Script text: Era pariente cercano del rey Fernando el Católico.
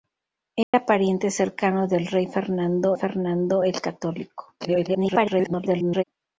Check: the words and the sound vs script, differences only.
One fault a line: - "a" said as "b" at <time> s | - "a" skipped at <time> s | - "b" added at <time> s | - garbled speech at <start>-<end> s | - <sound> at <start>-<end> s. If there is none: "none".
- dropout at 0.6-0.7 s
- "Fernando" added at 2.9 s
- garbled speech at 4.6-6.0 s